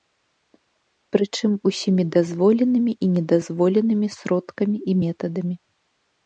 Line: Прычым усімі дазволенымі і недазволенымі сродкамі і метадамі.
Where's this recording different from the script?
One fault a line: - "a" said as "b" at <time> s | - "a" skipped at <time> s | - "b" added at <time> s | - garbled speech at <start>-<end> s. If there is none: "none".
none